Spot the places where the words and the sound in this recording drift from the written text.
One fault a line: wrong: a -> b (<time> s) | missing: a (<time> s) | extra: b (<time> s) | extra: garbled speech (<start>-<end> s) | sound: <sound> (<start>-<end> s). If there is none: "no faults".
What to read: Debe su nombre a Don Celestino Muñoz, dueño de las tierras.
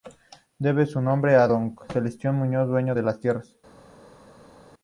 no faults